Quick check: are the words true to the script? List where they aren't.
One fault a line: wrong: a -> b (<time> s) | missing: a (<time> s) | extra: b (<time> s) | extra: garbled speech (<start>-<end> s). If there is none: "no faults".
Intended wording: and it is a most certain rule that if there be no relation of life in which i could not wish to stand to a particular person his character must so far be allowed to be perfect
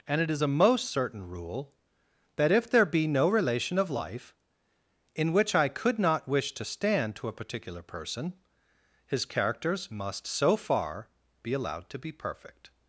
wrong: character -> characters (9.3 s)